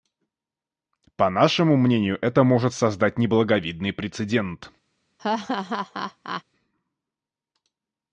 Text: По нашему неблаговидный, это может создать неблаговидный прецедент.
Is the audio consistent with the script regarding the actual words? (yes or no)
no